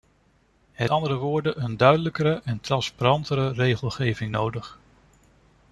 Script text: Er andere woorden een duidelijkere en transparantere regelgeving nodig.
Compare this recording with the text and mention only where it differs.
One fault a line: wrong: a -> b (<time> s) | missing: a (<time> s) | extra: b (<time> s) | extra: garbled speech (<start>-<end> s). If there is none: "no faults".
no faults